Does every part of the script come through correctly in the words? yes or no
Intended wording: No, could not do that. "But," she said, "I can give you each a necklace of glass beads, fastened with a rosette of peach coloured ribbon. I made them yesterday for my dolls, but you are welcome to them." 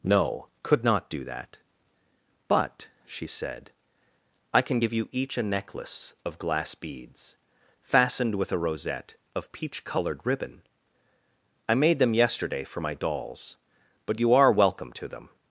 yes